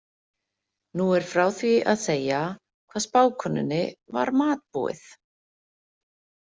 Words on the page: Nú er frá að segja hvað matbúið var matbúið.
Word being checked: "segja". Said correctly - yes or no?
yes